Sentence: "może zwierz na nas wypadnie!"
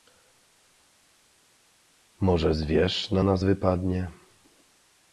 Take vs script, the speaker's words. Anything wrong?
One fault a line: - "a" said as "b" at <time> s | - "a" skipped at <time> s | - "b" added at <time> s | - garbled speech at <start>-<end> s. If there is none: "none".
none